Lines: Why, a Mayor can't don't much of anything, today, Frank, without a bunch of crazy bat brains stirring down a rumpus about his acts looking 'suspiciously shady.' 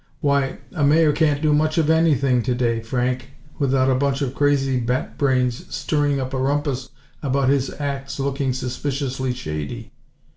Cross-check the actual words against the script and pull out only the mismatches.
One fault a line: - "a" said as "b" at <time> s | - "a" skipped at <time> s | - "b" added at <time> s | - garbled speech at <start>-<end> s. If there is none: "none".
- "don't" said as "do" at 1.4 s
- "down" said as "up" at 6.2 s